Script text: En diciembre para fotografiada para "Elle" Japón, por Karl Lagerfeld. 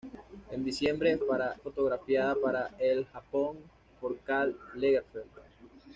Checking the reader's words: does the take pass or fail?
pass